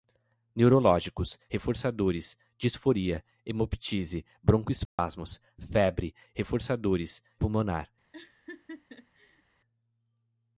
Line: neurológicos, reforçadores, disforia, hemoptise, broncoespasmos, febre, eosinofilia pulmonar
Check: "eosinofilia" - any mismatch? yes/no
yes